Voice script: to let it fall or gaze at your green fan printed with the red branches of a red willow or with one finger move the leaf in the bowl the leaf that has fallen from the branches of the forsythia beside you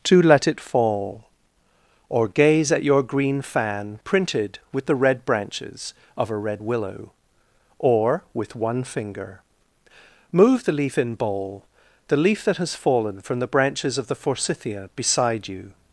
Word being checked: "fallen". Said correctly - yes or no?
yes